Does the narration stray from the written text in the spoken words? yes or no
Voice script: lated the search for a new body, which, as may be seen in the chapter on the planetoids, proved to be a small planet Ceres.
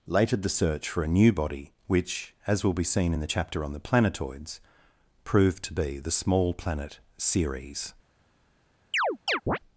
yes